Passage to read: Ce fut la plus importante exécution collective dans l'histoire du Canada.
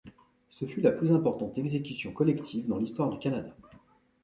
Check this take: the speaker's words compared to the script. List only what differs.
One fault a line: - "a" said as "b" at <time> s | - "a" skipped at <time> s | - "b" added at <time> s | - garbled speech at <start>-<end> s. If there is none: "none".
none